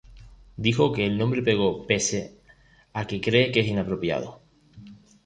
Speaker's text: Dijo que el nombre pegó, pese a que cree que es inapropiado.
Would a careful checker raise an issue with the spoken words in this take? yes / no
no